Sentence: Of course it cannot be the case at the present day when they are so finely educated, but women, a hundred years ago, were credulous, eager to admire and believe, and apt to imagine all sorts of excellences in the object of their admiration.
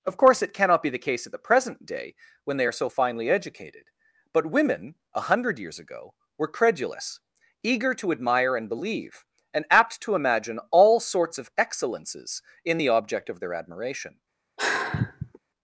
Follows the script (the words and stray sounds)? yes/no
no